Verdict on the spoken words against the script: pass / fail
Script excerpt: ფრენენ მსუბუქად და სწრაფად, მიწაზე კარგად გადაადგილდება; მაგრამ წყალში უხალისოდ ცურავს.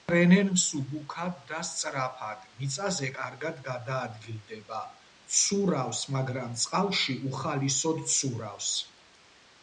fail